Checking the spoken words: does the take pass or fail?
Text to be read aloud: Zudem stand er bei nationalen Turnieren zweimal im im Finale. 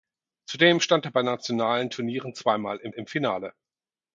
pass